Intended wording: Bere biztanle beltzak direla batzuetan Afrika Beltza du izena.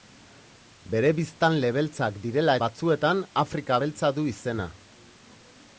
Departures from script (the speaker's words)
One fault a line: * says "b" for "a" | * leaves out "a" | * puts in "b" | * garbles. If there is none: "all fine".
all fine